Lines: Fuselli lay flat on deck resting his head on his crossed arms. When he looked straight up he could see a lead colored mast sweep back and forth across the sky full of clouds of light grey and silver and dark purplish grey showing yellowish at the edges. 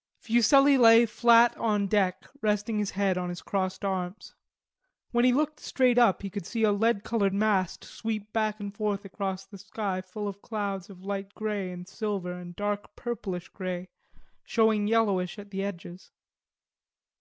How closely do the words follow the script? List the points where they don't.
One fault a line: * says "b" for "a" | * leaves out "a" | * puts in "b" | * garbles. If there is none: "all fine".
all fine